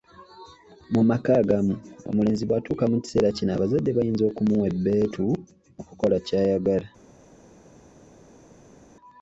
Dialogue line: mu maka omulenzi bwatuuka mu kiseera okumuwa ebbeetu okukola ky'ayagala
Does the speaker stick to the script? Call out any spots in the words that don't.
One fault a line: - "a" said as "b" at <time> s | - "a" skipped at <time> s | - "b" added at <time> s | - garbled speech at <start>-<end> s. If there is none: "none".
- "agamu" added at 1.4 s
- "kino abazadde bayinza" added at 3.4 s